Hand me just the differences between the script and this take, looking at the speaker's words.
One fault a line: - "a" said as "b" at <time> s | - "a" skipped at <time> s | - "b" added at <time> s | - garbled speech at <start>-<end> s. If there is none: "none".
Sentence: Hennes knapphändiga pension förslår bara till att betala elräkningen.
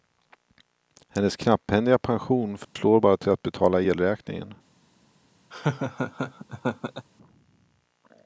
none